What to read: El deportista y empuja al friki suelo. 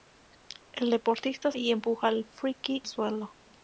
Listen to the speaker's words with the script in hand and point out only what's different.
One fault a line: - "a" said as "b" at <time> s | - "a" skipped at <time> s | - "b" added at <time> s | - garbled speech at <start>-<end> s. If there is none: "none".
none